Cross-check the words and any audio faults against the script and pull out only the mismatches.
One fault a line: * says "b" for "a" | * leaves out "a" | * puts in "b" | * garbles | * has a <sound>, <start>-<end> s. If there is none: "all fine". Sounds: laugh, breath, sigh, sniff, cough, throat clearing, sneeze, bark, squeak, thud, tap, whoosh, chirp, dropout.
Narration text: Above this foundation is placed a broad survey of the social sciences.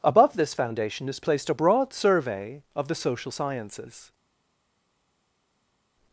all fine